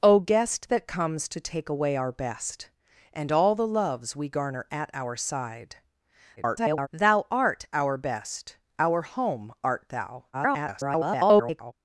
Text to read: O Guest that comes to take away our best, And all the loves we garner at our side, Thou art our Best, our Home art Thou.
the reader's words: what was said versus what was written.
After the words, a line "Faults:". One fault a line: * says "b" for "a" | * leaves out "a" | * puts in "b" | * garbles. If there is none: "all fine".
O Guest that comes to take away our best, And all the loves we garner at our side, [garbled] Thou art our Best, our Home art Thou. [garbled]
Faults:
* garbles
* garbles